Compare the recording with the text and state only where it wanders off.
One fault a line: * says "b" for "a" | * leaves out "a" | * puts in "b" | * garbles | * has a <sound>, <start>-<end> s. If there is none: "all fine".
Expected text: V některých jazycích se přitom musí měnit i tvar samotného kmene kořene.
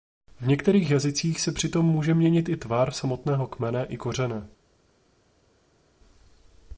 * says "může" for "musí"
* puts in "i"